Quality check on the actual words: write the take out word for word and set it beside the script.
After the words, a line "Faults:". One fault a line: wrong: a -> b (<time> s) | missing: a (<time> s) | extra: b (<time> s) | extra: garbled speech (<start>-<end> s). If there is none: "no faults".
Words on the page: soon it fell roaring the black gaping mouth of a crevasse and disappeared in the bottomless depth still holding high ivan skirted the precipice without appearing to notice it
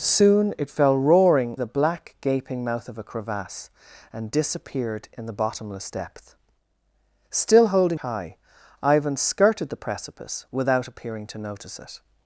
soon it fell roaring the black gaping mouth of a crevasse and disappeared in the bottomless depth still holding high ivan skirted the precipice without appearing to notice it
Faults:
no faults